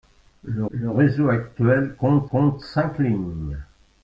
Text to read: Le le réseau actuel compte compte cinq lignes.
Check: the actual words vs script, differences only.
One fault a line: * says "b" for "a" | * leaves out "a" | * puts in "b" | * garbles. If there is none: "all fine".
all fine